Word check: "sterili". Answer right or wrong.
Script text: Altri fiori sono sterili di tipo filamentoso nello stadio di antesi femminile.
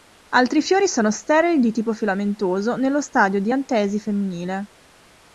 right